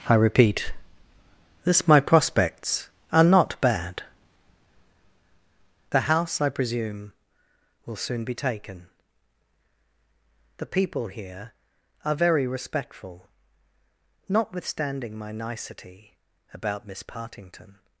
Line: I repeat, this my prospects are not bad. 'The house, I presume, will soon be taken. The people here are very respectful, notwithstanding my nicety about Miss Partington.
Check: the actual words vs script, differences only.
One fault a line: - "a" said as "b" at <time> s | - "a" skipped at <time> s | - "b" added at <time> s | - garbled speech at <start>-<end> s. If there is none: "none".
none